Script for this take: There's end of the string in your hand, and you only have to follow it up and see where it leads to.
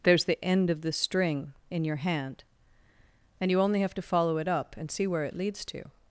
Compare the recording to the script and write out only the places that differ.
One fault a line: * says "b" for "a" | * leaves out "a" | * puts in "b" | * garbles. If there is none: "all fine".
* puts in "the"